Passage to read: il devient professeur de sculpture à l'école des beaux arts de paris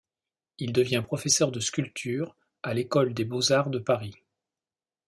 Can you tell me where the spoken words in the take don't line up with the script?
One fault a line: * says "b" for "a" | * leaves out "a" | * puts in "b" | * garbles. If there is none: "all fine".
all fine